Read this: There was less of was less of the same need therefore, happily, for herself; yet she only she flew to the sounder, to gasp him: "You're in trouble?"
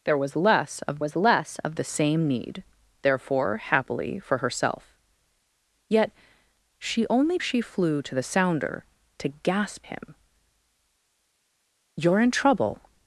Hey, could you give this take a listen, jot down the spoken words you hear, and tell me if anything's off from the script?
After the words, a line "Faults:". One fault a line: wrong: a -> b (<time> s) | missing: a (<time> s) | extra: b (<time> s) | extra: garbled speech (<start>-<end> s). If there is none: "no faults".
There was less of was less of the same need therefore, happily, for herself; yet she only she flew to the sounder, to gasp him: "You're in trouble?"
Faults:
no faults